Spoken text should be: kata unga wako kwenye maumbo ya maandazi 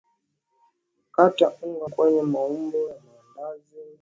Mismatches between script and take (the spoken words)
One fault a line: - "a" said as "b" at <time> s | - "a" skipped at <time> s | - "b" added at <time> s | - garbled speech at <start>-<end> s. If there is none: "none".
- "wako" skipped at 1.9 s